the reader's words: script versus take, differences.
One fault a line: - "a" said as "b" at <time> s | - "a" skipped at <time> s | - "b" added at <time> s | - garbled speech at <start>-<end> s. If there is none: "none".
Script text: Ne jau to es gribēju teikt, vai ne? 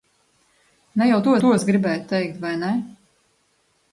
- "to" added at 1.4 s